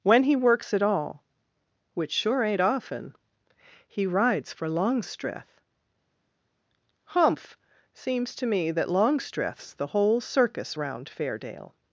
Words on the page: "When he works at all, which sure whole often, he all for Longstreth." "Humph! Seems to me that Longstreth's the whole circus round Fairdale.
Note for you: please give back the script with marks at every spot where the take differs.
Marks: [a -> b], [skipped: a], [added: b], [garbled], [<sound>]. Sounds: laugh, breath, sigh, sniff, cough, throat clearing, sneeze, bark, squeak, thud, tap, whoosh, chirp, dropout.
"When he works at all, which sure [whole -> ain't] often, he [all -> rides] for Longstreth." "Humph! Seems to me that Longstreth's the whole circus round Fairdale.